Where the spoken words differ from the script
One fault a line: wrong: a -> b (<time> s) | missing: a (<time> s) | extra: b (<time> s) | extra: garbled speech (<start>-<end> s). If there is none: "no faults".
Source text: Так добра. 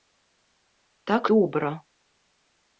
no faults